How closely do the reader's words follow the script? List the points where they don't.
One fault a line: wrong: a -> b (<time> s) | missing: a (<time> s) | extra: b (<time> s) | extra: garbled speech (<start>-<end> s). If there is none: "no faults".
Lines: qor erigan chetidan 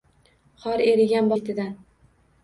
no faults